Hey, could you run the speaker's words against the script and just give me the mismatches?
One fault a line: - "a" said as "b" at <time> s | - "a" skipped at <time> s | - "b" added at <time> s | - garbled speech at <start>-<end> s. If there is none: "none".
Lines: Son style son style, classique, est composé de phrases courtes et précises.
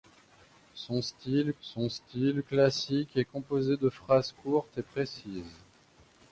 none